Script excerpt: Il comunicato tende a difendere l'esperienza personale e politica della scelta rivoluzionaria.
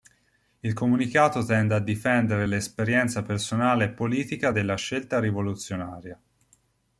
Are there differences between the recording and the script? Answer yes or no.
no